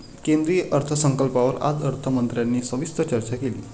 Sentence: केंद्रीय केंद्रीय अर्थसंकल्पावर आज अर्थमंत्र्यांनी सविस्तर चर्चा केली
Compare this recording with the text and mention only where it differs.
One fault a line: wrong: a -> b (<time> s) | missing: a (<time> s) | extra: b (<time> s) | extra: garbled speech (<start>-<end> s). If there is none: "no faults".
missing: केंद्रीय (0.6 s)